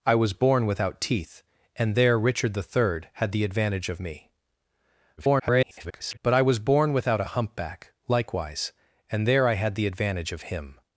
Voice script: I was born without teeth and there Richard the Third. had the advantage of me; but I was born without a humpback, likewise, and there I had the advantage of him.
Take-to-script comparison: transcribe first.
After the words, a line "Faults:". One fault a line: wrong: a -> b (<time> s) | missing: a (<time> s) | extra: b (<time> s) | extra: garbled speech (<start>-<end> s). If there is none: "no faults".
I was born without teeth and there Richard the Third. had the advantage of me; [garbled] but I was born without a humpback, likewise, and there I had the advantage of him.
Faults:
extra: garbled speech (5.2-6.2 s)